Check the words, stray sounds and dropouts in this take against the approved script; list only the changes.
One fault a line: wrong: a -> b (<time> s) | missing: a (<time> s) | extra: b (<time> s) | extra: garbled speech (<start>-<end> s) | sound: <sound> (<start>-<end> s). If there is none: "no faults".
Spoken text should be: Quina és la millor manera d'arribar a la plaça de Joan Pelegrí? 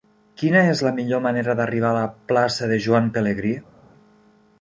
no faults